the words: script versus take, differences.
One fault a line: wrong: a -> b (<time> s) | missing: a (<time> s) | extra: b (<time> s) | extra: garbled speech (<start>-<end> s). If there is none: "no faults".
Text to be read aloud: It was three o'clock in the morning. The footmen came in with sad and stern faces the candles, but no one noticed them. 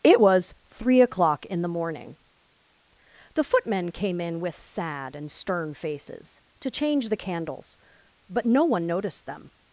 extra: to change (6.6 s)